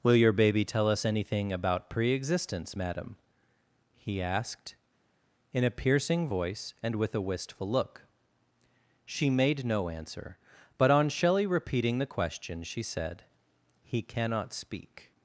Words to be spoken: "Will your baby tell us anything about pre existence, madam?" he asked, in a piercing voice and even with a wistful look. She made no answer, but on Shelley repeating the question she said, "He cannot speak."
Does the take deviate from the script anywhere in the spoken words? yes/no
yes